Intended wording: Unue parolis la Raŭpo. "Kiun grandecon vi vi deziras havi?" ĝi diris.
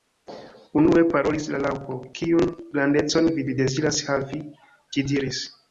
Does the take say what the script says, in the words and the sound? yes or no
yes